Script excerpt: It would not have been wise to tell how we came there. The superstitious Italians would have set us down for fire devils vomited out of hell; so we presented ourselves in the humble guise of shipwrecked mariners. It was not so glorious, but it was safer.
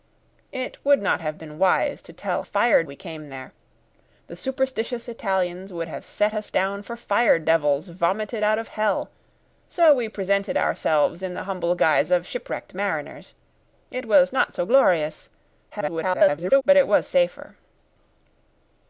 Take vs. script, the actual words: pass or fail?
fail